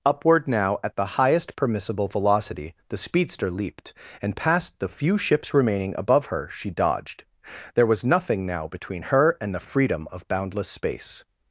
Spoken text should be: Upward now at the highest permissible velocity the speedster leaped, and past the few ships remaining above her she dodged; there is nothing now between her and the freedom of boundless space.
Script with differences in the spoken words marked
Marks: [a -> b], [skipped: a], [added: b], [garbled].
Upward now at the highest permissible velocity the speedster leaped, and past the few ships remaining above her she dodged; there [is -> was] nothing now between her and the freedom of boundless space.